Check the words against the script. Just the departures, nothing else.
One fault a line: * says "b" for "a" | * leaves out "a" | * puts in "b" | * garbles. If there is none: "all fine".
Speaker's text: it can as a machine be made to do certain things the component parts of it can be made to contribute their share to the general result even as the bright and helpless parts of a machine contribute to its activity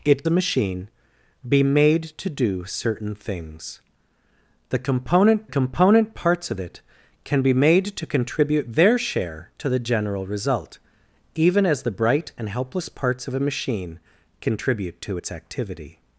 * leaves out "can as"
* puts in "component"